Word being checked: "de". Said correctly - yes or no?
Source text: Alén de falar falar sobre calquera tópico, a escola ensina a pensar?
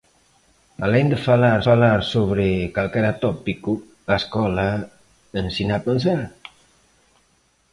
yes